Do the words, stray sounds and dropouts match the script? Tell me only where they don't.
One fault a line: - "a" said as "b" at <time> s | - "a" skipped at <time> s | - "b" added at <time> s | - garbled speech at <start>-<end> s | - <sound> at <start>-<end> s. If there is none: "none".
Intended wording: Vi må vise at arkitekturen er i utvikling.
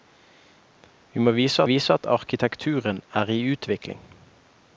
- "vise" added at 1.6 s